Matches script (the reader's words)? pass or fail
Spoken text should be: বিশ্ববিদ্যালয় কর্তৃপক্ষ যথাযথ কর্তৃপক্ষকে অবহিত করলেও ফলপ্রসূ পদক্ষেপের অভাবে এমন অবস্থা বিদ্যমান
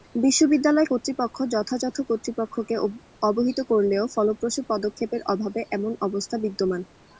pass